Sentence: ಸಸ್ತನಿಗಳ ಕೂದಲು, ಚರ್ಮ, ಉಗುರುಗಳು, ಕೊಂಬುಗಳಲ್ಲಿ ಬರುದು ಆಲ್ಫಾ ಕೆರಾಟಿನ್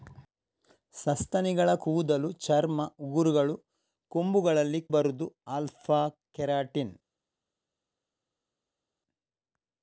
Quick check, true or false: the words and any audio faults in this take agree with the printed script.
true